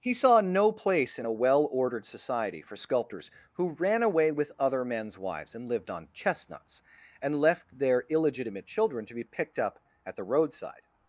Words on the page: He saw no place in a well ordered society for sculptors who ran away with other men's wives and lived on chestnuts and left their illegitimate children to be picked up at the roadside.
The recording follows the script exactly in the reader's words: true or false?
true